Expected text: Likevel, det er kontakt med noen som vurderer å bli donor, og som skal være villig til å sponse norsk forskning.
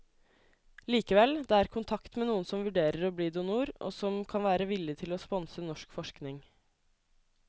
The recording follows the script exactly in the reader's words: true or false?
false